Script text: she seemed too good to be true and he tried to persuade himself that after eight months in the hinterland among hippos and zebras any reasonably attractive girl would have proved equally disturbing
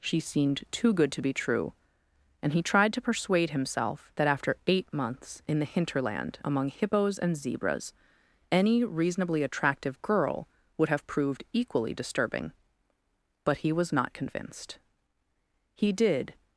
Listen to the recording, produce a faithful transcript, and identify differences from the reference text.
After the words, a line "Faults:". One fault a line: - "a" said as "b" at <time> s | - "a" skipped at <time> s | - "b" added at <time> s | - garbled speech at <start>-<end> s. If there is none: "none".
she seemed too good to be true and he tried to persuade himself that after eight months in the hinterland among hippos and zebras any reasonably attractive girl would have proved equally disturbing but he was not convinced he did
Faults:
- "but he was not convinced he did" added at 13.4 s